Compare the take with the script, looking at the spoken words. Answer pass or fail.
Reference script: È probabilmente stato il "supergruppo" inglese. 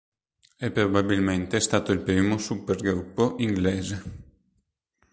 fail